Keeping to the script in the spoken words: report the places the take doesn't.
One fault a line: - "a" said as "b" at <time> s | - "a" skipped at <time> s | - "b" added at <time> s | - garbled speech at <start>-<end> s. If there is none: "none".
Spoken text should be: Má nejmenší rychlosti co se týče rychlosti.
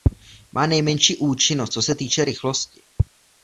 - "rychlosti" said as "účinnost" at 1.2 s